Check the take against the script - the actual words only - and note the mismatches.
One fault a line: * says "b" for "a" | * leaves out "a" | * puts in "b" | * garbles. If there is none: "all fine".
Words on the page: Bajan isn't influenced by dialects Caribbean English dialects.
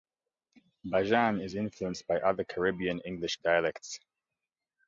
* says "is" for "isn't"
* says "other" for "dialects"